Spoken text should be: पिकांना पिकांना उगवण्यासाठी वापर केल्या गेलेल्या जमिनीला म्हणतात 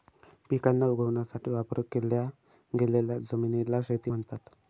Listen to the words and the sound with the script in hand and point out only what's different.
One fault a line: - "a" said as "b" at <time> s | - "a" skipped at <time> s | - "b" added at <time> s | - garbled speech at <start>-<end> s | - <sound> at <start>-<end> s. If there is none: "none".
- "पिकांना" skipped at 0.8 s
- "शेती" added at 3.8 s